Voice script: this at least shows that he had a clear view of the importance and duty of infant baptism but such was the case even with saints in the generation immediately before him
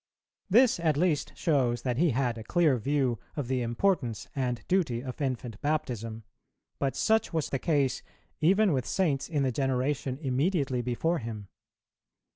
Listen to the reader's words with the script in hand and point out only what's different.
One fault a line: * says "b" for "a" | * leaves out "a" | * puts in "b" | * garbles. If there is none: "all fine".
all fine